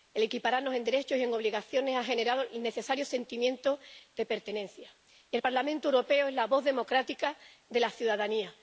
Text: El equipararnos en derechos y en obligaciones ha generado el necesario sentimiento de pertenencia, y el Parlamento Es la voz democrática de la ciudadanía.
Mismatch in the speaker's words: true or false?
true